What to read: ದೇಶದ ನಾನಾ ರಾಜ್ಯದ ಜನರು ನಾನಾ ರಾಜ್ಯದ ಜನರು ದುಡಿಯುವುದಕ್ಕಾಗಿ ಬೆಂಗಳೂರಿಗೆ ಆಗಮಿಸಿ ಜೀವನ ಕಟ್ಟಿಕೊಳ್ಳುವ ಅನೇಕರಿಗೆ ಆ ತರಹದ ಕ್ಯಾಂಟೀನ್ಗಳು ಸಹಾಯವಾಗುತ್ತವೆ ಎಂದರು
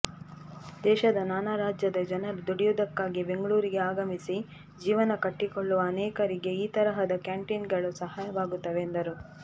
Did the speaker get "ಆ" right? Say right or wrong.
wrong